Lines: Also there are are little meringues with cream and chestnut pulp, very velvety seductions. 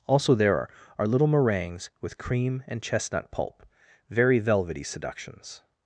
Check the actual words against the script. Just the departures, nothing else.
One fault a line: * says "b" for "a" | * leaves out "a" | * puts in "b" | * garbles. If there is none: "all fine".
all fine